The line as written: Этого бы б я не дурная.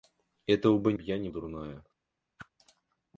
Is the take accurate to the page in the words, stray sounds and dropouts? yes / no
no